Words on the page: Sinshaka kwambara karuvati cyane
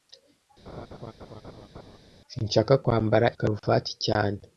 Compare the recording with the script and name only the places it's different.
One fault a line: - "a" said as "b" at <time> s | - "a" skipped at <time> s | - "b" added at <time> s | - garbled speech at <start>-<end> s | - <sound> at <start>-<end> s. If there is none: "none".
- laugh at 0.7-2.0 s